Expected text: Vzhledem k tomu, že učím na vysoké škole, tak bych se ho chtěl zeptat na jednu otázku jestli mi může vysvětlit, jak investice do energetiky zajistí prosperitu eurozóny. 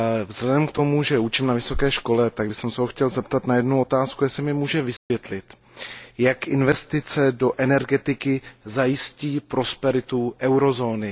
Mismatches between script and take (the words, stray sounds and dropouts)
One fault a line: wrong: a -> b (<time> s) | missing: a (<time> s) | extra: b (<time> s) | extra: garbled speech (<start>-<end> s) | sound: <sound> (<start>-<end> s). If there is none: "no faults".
sound: dropout (5.0-5.1 s)